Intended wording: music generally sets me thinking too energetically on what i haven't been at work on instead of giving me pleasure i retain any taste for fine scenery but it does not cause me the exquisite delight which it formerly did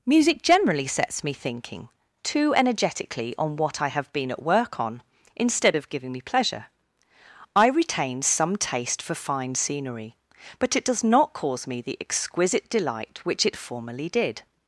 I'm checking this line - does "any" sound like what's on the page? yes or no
no